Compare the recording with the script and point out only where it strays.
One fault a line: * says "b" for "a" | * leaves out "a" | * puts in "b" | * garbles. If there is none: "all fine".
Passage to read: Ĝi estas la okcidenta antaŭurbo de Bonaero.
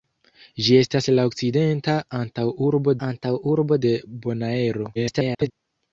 * puts in "antaŭurbo"
* garbles